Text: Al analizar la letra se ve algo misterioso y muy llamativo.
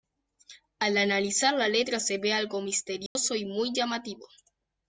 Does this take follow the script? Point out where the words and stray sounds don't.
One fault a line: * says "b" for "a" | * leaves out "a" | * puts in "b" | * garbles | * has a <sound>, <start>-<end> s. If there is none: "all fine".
* has a dropout, 3.1-3.2 s